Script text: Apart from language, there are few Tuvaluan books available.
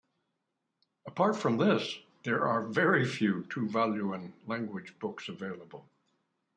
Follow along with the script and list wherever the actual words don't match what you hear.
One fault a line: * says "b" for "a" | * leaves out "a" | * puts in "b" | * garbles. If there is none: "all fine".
* says "this" for "language"
* puts in "very"
* puts in "language"